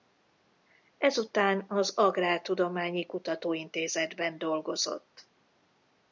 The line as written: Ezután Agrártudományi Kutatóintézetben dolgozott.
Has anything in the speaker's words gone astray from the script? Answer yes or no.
yes